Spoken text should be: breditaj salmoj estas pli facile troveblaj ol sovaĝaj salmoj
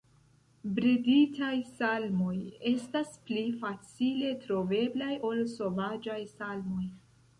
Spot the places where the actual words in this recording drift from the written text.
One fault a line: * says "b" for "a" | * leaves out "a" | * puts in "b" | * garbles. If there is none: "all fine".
all fine